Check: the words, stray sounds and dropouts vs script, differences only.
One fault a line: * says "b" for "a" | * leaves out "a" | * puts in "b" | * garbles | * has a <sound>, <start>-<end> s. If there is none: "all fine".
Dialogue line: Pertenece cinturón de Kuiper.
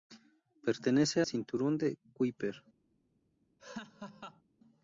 * has a laugh, 3.6-4.4 s